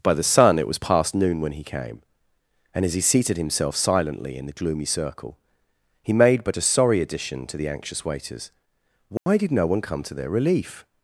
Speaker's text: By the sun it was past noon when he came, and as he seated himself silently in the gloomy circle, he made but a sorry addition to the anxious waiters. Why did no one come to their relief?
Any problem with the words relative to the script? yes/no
no